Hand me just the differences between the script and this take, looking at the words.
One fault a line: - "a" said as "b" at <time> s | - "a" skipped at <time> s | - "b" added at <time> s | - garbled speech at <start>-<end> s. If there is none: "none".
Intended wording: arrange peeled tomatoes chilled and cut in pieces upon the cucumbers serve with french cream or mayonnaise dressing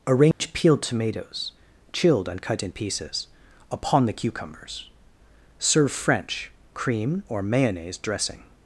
- "with" skipped at 5.9 s